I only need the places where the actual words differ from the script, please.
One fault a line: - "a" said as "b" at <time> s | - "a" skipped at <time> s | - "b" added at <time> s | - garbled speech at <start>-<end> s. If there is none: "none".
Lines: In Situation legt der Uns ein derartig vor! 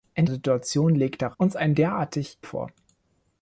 none